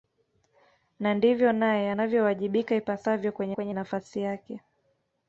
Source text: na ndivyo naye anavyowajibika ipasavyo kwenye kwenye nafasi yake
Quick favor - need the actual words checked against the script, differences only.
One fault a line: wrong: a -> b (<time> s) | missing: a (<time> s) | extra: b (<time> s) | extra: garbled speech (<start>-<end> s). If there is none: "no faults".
no faults